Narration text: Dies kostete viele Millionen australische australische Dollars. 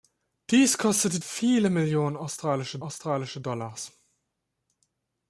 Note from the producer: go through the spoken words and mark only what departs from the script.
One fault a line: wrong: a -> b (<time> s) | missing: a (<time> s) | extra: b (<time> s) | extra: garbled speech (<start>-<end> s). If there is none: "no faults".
no faults